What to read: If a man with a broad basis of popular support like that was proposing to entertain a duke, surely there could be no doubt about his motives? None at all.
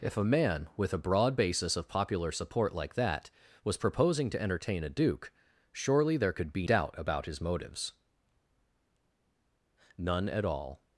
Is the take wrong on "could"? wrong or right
right